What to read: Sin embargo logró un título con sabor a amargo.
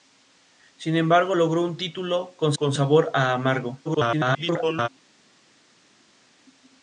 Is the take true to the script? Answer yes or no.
no